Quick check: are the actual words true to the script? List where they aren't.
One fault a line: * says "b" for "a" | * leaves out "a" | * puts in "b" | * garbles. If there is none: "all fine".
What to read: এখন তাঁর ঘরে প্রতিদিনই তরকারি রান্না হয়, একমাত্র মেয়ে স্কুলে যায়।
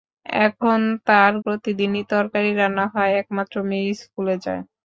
* leaves out "ঘরে"